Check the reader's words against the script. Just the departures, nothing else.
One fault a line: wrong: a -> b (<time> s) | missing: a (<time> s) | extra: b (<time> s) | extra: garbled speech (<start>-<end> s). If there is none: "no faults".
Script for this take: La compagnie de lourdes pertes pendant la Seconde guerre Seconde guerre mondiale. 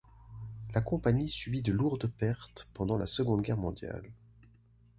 extra: subit (1.3 s)
missing: Seconde guerre (3.6 s)